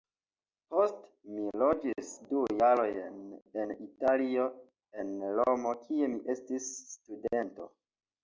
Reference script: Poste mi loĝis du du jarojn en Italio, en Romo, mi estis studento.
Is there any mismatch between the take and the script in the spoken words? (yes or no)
yes